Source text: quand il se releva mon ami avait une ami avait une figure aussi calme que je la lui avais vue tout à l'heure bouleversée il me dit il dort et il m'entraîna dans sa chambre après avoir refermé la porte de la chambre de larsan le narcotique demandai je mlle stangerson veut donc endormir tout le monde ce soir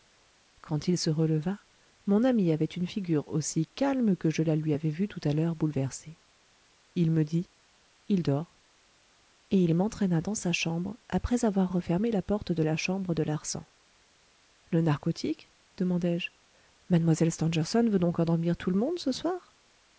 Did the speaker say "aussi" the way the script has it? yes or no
yes